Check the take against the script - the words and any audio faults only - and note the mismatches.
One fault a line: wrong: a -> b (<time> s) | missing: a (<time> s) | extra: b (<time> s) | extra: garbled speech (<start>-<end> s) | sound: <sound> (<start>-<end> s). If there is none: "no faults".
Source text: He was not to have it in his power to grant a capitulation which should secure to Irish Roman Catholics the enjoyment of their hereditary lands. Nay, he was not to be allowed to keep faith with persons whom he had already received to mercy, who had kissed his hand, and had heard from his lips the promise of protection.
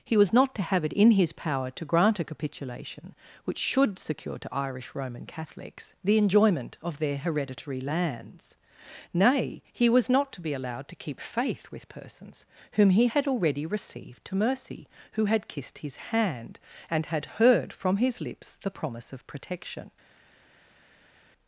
no faults